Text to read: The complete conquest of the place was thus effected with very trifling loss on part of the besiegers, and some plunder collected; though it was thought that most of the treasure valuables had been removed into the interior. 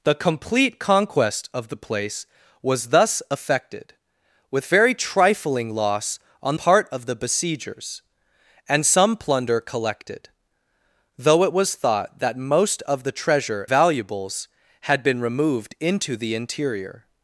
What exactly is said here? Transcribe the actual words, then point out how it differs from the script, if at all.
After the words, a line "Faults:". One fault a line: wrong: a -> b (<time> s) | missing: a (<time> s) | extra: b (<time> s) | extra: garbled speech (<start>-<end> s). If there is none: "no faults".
The complete conquest of the place was thus effected with very trifling loss on part of the besiegers, and some plunder collected; though it was thought that most of the treasure valuables had been removed into the interior.
Faults:
no faults